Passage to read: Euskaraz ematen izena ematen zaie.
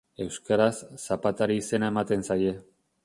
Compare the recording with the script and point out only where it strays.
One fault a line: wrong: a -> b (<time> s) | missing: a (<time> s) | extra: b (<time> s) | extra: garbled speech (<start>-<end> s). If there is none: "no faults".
wrong: ematen -> zapatari (1.0 s)